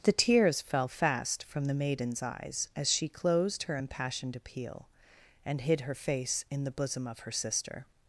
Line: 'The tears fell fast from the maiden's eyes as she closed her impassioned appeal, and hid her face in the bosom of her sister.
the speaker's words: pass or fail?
pass